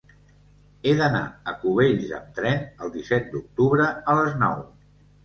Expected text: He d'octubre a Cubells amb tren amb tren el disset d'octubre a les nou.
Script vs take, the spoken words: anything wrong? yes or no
yes